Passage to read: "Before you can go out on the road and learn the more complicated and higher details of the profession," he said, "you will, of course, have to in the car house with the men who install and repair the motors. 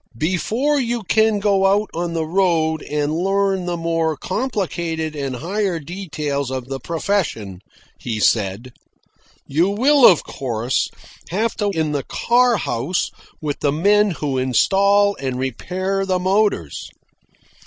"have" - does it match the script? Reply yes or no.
yes